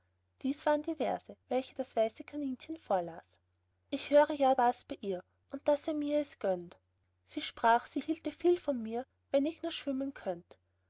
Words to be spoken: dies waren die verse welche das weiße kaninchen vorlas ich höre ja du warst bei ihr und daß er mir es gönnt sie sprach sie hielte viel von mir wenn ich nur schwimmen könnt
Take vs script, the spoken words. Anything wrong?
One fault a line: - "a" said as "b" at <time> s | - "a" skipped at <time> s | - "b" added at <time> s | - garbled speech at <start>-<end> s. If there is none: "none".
- "du" skipped at 4.5 s